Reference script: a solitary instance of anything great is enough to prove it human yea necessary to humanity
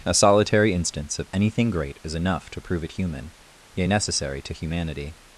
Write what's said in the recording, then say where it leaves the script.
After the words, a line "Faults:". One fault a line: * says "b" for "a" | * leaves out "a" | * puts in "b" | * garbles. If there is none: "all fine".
a solitary instance of anything great is enough to prove it human yea necessary to humanity
Faults:
all fine